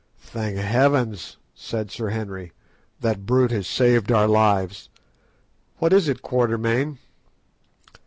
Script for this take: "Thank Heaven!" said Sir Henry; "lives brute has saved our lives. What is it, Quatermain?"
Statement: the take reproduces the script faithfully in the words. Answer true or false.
false